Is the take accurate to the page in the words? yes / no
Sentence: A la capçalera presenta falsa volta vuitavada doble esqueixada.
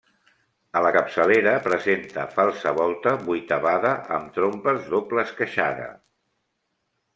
no